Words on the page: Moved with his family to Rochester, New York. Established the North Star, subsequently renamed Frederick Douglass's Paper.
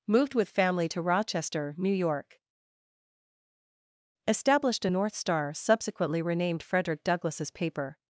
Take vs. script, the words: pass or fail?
fail